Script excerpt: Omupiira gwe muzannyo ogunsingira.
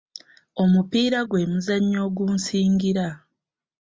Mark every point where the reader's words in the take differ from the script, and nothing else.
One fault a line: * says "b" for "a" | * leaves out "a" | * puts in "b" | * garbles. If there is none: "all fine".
all fine